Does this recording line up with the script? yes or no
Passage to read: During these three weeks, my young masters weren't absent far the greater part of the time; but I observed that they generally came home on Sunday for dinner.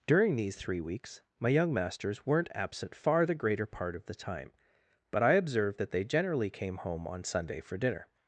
yes